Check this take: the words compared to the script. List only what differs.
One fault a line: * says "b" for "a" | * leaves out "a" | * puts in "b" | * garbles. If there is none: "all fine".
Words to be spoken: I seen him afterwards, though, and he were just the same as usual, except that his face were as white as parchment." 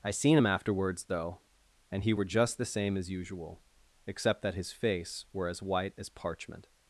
all fine